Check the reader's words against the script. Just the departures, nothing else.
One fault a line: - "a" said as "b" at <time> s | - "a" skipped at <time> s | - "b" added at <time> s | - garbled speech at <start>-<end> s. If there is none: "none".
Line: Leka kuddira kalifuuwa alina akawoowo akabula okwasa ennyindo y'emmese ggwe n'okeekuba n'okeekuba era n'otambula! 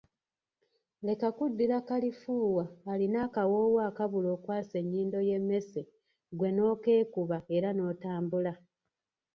- "n'okeekuba" skipped at 7.4 s